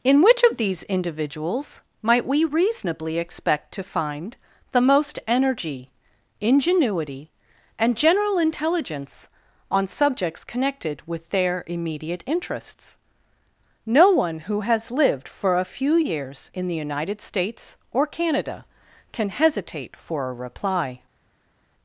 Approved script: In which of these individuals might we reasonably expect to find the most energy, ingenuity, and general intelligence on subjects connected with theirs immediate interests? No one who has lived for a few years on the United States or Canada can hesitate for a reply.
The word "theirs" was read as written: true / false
false